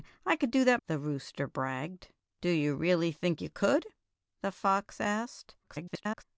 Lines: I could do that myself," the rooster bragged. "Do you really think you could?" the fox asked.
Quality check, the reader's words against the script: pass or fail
fail